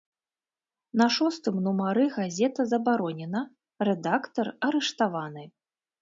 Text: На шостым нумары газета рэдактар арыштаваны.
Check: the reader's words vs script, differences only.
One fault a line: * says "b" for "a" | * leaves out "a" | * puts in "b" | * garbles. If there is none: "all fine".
* puts in "забаронена"